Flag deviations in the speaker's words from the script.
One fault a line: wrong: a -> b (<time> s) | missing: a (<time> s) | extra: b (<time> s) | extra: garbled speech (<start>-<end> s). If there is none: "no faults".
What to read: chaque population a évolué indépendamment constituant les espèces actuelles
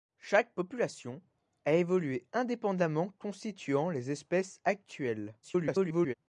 extra: garbled speech (5.4-6.1 s)